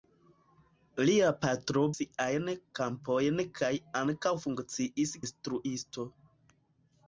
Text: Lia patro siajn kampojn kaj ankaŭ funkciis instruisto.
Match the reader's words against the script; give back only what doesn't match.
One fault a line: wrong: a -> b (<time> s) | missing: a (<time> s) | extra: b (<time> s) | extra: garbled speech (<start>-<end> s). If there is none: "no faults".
no faults